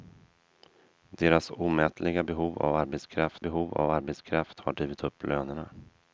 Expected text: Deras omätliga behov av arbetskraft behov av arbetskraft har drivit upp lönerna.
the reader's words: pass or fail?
pass